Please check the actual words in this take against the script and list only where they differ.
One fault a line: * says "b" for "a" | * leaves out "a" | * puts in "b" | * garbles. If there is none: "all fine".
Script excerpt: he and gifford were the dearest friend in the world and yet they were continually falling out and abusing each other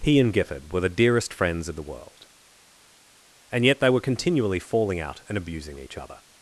* says "friends" for "friend"